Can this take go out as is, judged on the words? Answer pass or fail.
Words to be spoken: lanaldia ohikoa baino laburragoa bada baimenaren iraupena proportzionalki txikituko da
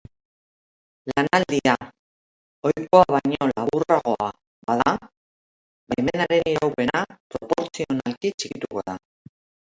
pass